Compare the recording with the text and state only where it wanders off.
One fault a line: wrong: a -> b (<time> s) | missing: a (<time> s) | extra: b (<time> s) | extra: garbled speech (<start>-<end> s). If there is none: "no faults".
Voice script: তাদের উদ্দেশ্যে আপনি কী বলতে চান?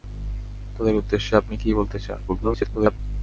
extra: garbled speech (2.3-3.0 s)